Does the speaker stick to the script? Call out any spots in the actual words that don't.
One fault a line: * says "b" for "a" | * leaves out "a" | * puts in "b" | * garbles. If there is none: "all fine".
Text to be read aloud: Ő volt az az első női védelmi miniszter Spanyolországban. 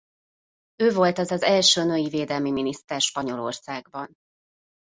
all fine